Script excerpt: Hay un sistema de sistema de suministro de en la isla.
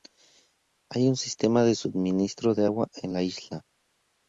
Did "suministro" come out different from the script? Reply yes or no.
yes